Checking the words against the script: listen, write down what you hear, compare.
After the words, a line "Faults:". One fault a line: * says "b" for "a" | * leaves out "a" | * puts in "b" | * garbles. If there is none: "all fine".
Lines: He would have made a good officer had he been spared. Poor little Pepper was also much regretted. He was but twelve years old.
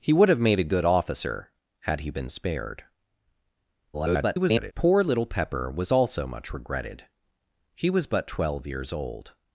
He would have made a good officer had he been spared. [garbled] Poor little Pepper was also much regretted. He was but twelve years old.
Faults:
* garbles